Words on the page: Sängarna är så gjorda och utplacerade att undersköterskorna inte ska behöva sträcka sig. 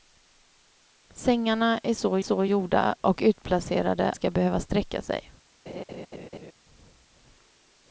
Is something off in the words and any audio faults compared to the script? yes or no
yes